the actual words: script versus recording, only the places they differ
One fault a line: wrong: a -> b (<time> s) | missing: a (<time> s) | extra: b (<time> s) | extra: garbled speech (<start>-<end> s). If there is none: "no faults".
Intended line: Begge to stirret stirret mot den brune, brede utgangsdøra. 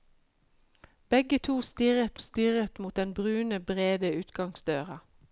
no faults